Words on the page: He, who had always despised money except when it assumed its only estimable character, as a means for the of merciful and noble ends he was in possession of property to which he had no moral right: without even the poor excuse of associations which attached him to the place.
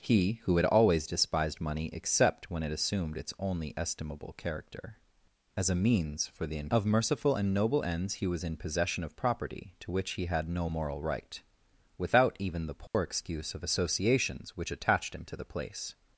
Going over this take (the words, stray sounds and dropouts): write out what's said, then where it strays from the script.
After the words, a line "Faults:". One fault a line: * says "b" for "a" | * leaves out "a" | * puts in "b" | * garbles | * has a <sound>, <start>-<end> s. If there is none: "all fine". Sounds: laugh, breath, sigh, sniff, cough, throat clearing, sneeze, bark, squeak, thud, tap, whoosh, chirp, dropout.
He, who had always despised money except when it assumed its only estimable character, as a means for the of merciful and noble ends he was in possession of property to which he had no moral right: without even the poor excuse of associations which attached him to the place.
Faults:
* has a dropout, 12.9-12.9 s